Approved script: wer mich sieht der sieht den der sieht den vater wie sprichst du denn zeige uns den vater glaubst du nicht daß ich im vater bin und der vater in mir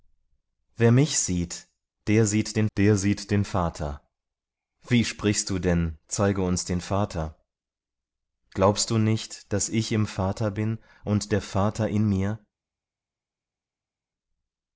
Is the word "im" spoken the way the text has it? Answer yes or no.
yes